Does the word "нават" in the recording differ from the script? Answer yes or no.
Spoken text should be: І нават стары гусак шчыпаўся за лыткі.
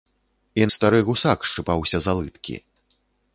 yes